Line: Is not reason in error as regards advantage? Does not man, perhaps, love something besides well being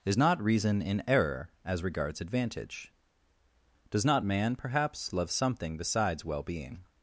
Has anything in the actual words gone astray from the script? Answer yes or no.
no